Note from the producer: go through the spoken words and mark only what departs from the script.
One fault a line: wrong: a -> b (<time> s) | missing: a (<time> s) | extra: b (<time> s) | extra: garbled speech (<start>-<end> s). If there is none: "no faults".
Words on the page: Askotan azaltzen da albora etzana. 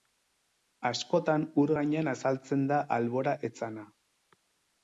extra: ur gainean (1.6 s)